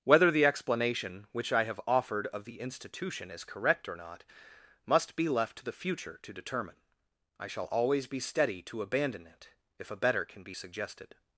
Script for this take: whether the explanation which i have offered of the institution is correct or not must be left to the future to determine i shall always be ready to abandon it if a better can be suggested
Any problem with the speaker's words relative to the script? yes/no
yes